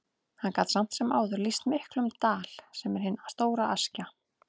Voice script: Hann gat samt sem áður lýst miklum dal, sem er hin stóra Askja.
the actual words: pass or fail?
pass